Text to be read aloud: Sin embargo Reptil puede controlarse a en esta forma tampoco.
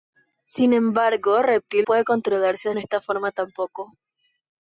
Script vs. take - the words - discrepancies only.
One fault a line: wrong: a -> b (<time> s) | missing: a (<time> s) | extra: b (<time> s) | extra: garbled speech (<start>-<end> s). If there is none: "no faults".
no faults